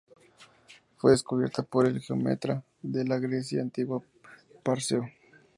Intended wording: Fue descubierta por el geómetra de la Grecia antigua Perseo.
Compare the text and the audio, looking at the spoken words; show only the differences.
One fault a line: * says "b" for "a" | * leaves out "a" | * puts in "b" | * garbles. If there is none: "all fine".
all fine